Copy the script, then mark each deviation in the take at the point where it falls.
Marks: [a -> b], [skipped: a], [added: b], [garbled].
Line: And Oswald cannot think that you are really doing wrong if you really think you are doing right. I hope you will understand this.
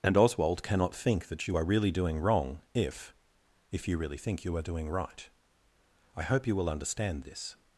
And Oswald cannot think that you are really doing wrong if [added: if] you really think you are doing right. I hope you will understand this.